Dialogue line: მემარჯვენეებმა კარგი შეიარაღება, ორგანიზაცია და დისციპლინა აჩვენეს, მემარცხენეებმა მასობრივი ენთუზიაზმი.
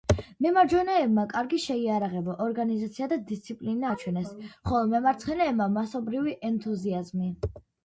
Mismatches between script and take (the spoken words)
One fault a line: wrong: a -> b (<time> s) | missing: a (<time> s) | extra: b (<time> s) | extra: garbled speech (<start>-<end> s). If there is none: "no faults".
extra: ხოლო (4.5 s)